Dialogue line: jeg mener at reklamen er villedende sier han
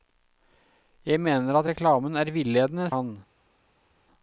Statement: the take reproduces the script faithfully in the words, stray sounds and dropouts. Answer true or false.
false